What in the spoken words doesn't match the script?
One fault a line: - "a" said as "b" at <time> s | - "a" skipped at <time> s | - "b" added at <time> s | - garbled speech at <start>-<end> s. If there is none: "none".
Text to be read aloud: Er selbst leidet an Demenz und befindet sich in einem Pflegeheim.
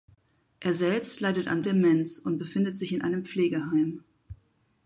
none